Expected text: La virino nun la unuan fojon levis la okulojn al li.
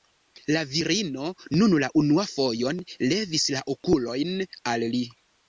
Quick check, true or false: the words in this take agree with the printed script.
true